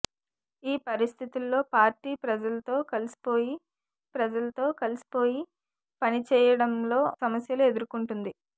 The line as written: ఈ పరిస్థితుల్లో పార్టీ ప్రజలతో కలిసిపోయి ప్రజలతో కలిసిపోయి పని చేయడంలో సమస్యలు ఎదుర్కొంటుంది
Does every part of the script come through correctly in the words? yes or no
yes